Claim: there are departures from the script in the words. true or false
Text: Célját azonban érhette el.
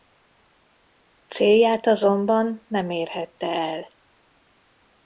true